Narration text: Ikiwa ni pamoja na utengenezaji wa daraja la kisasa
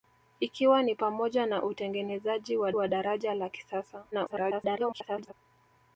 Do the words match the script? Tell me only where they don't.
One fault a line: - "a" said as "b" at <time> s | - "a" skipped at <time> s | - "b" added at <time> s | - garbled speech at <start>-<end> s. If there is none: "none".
- "wa" added at 2.7 s
- garbled speech at 4.1-5.3 s